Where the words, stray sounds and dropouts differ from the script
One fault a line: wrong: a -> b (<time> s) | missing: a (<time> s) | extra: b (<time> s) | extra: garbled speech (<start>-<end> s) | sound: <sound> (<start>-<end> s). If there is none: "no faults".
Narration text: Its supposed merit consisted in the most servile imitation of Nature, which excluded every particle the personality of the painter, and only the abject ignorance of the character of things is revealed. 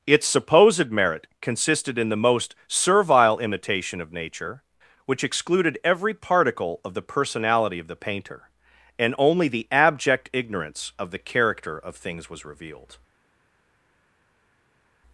extra: of (6.8 s)
wrong: is -> was (12.3 s)